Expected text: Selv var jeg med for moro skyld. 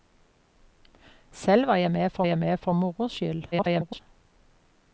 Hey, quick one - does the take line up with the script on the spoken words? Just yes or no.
no